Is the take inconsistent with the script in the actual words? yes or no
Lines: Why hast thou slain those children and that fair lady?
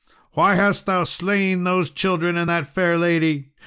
no